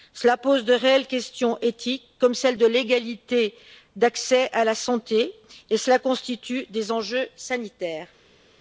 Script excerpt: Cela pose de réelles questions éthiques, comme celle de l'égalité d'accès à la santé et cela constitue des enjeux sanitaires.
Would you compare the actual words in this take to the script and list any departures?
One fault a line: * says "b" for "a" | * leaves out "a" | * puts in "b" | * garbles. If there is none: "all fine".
all fine